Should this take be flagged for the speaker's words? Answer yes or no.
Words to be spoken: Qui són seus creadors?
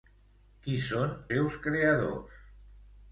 no